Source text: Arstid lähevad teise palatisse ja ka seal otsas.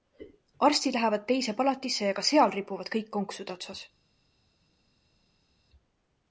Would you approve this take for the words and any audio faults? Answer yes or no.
no